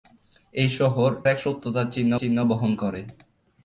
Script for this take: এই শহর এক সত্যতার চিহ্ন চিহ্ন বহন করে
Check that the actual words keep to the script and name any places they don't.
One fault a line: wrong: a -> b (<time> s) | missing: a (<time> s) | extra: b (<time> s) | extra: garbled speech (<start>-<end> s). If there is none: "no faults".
no faults